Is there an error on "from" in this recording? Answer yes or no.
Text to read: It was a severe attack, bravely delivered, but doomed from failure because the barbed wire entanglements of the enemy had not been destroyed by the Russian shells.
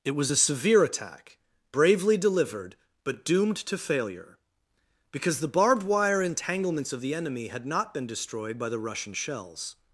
yes